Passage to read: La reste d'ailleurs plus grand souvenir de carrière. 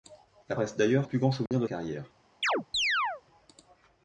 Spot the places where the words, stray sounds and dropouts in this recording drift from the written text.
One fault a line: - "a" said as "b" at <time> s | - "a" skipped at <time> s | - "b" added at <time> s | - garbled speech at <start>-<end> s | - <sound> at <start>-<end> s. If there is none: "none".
- dropout at 1.5-1.5 s
- chirp at 2.4-3.2 s